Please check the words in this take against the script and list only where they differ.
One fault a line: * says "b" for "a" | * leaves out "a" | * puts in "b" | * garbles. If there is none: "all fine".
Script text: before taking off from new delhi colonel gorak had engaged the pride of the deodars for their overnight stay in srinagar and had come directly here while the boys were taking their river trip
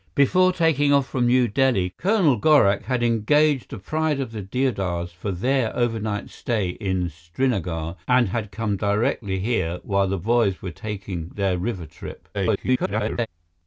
* garbles